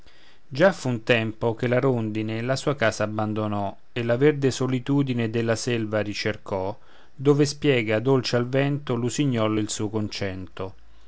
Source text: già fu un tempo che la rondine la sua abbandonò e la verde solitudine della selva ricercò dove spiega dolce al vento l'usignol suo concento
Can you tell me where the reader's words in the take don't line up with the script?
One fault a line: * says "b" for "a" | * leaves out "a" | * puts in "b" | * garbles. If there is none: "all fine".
* puts in "casa"
* puts in "il"